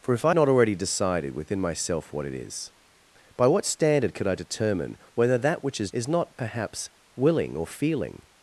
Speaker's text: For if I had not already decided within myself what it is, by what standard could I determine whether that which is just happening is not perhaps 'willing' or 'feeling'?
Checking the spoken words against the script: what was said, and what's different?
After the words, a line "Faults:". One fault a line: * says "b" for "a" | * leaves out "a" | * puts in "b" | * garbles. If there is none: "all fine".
For if I not already decided within myself what it is, by what standard could I determine whether that which is is not perhaps 'willing' or 'feeling'?
Faults:
* leaves out "had"
* leaves out "just happening"